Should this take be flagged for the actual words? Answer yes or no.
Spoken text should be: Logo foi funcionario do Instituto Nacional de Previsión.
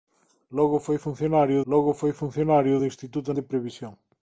yes